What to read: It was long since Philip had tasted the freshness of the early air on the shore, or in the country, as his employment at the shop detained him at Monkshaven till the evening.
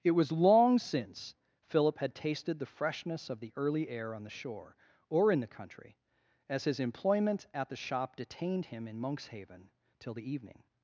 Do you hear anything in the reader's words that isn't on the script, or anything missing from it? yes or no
yes